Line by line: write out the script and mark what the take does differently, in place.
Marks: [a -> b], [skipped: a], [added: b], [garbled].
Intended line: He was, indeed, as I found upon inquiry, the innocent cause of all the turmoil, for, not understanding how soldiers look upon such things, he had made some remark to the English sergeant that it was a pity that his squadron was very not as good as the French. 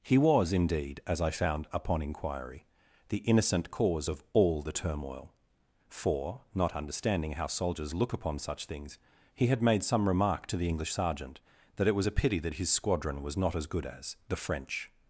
He was, indeed, as I found upon inquiry, the innocent cause of all the turmoil, for, not understanding how soldiers look upon such things, he had made some remark to the English sergeant that it was a pity that his squadron was [skipped: very] not as good as the French.